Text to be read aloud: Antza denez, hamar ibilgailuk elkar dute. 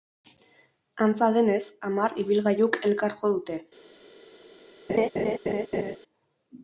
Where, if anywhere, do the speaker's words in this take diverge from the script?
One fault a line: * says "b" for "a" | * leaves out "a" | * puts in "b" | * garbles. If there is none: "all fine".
* puts in "jo"